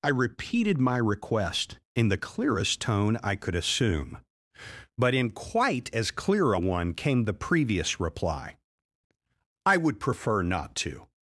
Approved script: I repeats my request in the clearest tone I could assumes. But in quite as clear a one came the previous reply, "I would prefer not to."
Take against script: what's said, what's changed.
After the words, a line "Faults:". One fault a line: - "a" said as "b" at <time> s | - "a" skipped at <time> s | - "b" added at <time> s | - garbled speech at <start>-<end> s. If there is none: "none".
I repeated my request in the clearest tone I could assume. But in quite as clear a one came the previous reply, "I would prefer not to."
Faults:
- "repeats" said as "repeated" at 0.1 s
- "assumes" said as "assume" at 3.5 s